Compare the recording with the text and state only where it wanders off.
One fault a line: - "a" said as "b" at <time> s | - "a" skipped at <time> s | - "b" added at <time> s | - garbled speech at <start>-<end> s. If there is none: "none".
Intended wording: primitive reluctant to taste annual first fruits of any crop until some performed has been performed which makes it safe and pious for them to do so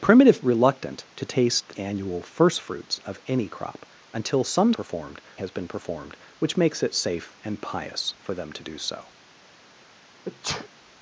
none